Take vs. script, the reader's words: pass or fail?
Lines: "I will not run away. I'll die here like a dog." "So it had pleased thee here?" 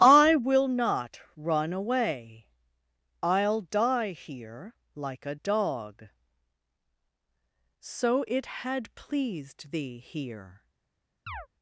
pass